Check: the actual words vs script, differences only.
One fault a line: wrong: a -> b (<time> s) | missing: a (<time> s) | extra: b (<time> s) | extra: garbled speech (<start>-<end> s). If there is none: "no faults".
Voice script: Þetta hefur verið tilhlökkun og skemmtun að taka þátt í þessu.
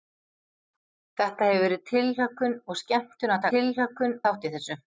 wrong: taka -> tilhlökkun (3.5 s)